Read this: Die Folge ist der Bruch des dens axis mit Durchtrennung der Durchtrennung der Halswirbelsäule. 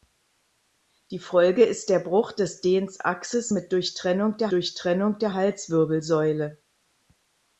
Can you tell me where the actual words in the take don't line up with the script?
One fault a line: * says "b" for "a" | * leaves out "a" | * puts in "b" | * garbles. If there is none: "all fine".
all fine